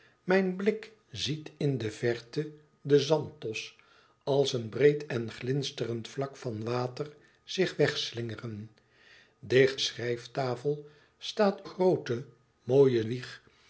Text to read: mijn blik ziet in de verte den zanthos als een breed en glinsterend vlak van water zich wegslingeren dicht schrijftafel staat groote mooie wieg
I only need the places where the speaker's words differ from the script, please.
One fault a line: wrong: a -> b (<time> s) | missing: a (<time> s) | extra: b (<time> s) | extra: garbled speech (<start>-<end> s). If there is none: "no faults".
no faults